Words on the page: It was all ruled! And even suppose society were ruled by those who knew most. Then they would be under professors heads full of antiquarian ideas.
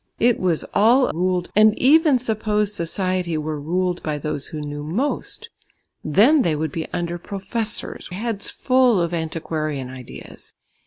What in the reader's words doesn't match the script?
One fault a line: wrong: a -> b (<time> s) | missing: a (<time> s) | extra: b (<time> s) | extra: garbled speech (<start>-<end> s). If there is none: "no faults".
no faults